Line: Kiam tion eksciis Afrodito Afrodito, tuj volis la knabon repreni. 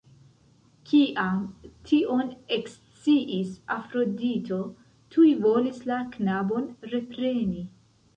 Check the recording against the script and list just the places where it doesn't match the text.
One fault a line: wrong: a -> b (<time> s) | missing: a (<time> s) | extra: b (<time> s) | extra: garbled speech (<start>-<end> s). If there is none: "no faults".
missing: Afrodito (4.6 s)